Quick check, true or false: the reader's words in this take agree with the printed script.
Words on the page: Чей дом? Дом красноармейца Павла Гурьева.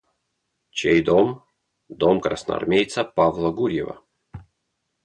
true